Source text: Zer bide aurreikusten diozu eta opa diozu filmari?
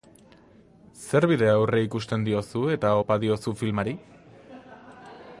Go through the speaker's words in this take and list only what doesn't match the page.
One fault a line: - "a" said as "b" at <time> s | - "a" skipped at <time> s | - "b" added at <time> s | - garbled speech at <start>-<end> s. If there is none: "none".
none